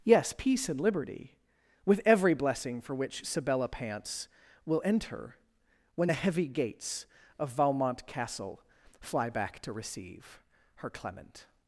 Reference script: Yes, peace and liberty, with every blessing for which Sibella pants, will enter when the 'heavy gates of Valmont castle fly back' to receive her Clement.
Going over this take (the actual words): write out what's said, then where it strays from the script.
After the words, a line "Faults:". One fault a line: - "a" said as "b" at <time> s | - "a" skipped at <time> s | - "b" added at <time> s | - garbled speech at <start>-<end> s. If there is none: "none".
Yes, peace and liberty, with every blessing for which Sibella pants, will enter when the 'heavy gates of Valmont castle fly back' to receive her Clement.
Faults:
none